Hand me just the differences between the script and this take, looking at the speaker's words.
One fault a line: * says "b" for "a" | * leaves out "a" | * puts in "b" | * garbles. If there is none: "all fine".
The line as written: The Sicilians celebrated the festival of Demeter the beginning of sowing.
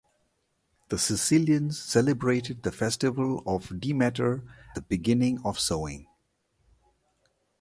all fine